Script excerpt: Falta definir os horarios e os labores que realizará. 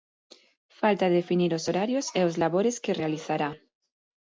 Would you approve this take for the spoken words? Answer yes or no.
yes